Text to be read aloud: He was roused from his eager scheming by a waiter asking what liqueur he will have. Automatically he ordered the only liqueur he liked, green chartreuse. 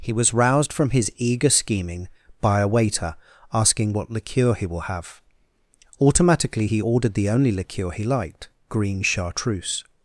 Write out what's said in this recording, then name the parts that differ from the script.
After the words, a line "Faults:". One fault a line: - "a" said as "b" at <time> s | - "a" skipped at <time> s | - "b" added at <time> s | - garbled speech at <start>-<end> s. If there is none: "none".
He was roused from his eager scheming by a waiter asking what liqueur he will have. Automatically he ordered the only liqueur he liked, green chartreuse.
Faults:
none